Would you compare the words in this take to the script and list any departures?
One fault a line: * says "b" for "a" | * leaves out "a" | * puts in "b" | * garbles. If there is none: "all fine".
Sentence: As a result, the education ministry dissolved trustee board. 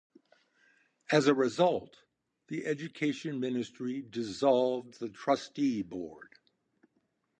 * puts in "the"